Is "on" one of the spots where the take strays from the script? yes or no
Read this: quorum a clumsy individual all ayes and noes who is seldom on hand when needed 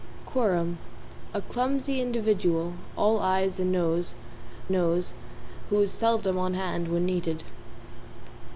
no